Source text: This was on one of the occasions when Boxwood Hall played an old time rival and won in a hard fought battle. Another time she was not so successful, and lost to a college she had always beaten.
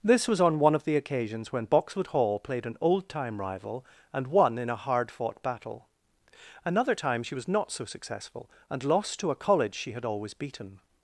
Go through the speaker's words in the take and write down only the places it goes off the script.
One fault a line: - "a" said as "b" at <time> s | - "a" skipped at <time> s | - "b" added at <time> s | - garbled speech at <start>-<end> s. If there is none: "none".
none